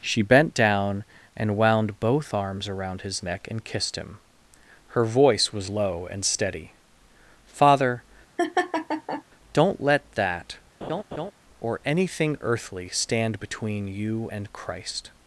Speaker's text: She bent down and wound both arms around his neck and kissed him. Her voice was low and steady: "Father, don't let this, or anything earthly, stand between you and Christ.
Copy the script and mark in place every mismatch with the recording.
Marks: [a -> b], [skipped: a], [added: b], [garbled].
She bent down and wound both arms around his neck and kissed him. Her voice was low and steady: "Father, don't let [this, -> that] or anything earthly, stand between you and Christ.